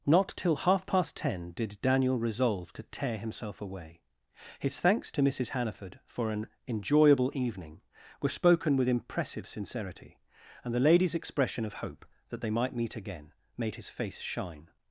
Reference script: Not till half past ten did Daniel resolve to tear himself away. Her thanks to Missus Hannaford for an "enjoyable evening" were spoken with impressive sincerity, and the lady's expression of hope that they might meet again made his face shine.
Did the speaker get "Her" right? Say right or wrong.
wrong